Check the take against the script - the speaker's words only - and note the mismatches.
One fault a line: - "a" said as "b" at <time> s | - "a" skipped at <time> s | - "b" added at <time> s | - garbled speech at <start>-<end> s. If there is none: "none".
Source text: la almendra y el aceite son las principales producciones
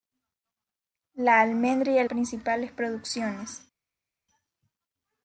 - "aceite son las" skipped at 2.1 s